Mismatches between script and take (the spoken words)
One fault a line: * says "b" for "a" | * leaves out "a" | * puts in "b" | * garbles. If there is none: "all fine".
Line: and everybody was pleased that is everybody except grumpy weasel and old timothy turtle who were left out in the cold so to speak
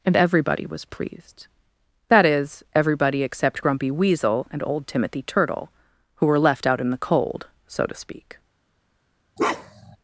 all fine